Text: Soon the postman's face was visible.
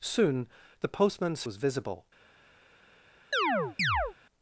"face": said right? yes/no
no